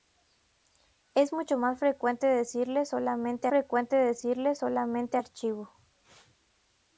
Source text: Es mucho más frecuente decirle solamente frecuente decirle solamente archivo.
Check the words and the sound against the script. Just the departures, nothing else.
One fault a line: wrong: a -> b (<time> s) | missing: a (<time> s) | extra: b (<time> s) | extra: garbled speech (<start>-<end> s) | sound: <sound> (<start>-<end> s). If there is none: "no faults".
no faults